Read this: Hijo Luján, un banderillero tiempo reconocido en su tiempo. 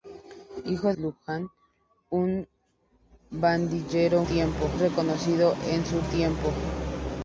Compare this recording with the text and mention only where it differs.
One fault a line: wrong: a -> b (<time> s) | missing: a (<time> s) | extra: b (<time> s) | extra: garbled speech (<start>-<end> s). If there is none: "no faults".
no faults